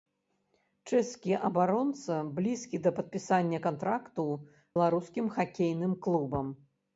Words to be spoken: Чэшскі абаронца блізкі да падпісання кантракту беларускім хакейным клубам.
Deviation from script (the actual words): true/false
false